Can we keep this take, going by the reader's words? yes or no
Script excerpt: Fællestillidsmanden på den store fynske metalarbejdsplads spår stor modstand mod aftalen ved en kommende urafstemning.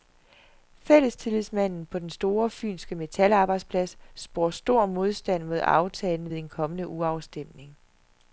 yes